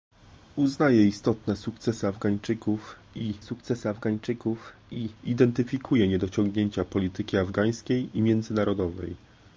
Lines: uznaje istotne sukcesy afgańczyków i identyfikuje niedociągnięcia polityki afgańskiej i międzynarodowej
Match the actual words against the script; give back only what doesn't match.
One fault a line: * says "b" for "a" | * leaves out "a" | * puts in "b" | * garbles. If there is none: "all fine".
* puts in "sukcesy afgańczyków i"